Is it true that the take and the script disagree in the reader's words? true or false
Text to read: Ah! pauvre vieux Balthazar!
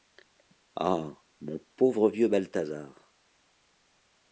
true